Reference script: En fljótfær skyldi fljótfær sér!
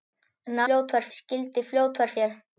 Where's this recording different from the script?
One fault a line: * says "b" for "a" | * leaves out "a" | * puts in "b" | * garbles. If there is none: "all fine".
all fine